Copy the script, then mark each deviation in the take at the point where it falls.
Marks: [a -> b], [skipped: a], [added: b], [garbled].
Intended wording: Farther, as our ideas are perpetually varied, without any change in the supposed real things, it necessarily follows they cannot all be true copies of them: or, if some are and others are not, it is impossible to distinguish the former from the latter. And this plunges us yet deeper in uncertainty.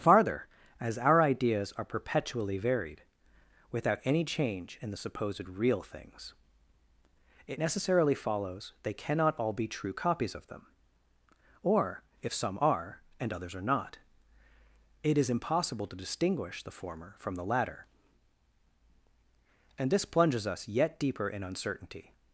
Farther, as our ideas are perpetually varied, without any change in the supposed real things, it necessarily follows they cannot all be true copies of them: or, if some are and others are not, it is impossible to distinguish the former from the latter. And this plunges us yet deeper in uncertainty.